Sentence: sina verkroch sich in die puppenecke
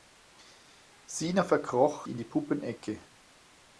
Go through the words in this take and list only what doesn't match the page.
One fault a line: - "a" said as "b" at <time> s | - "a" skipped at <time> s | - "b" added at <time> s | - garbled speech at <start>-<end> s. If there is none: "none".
- "sich" skipped at 2.1 s